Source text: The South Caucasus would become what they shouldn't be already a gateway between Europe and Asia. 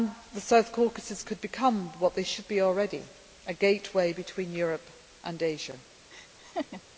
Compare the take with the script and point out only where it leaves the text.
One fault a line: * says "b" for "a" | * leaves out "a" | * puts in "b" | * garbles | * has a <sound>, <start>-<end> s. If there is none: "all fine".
* says "could" for "would"
* says "should" for "shouldn't"
* has a laugh, 6.1-6.8 s